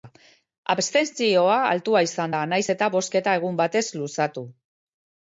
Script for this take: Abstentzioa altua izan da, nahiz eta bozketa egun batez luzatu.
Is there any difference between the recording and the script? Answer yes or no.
no